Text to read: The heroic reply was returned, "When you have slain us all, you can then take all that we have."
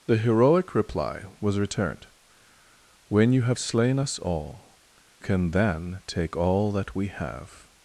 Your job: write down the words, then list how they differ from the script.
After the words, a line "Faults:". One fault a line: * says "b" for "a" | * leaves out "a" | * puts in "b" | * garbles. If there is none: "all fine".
The heroic reply was returned, "When you have slain us all, can then take all that we have."
Faults:
* leaves out "you"